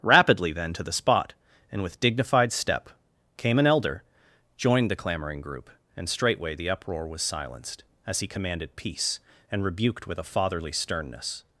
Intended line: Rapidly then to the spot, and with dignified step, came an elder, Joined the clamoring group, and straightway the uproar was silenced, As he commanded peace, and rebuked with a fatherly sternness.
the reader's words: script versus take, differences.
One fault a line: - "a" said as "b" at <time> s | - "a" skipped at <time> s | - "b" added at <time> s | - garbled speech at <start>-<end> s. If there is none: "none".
none